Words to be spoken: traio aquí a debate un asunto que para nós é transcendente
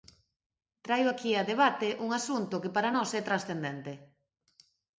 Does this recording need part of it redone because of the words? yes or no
no